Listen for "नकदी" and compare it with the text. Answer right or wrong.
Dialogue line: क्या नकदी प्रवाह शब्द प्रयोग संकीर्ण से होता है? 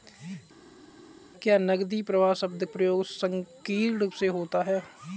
right